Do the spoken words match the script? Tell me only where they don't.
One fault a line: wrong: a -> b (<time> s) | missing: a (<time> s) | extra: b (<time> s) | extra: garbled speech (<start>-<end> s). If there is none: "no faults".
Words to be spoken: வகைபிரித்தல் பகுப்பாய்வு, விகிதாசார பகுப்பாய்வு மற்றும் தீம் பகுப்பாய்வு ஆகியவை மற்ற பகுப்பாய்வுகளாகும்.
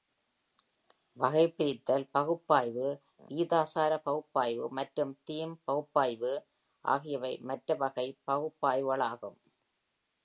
extra: வகை (7.8 s)